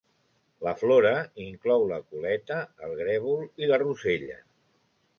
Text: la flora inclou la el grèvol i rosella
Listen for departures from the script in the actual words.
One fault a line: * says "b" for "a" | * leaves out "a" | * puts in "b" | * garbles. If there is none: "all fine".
* puts in "coleta"
* puts in "la"